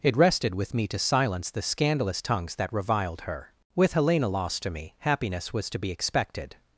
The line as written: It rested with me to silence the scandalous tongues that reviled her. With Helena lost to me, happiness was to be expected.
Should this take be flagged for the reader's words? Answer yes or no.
no